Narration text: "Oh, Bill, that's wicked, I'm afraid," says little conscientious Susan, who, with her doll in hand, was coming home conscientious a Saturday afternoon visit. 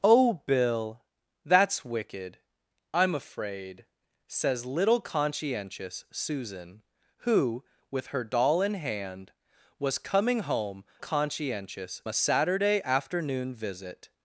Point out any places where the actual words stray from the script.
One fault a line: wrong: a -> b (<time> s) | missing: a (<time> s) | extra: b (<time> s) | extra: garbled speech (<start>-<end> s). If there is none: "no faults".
no faults